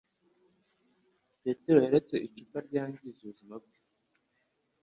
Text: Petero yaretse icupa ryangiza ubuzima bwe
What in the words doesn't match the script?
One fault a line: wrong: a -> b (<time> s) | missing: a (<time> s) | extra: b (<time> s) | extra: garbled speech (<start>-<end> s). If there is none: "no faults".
no faults